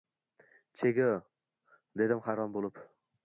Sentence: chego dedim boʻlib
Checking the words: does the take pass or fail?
fail